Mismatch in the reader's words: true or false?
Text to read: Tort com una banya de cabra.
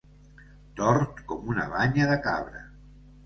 false